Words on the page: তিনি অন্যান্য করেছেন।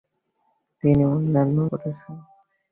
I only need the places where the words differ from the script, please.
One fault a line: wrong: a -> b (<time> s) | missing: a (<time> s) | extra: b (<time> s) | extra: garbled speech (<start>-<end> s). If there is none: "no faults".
no faults